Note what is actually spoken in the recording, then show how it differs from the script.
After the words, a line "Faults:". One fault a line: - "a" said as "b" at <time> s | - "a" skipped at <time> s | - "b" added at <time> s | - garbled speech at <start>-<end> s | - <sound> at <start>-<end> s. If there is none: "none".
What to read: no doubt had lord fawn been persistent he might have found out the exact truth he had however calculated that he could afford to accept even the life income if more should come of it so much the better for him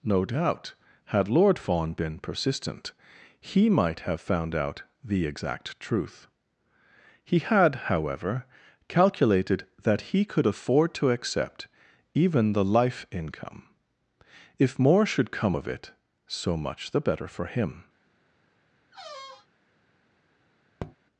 no doubt had lord fawn been persistent he might have found out the exact truth he had however calculated that he could afford to accept even the life income if more should come of it so much the better for him
Faults:
- squeak at 18.9-19.5 s
- tap at 20.8-21.0 s